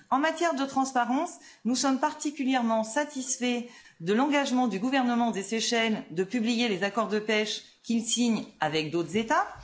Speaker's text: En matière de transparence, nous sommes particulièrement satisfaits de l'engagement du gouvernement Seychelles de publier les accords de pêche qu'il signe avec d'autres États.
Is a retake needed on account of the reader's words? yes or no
yes